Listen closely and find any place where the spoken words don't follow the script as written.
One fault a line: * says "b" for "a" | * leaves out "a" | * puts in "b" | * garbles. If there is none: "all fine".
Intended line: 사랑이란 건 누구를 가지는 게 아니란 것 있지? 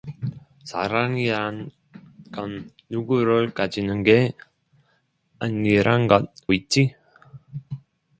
all fine